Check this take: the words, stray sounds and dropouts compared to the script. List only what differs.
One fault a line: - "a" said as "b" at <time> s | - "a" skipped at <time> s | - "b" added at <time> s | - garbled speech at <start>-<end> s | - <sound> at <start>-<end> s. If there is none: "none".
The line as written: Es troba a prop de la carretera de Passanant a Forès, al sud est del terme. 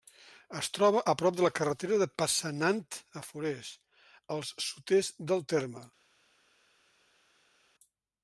none